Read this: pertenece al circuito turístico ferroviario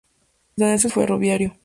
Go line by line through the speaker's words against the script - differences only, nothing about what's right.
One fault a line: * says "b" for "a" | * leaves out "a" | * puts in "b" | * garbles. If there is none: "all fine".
* leaves out "circuito turístico"